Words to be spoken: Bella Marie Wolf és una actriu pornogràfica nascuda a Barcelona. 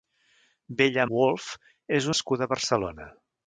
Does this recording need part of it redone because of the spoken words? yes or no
yes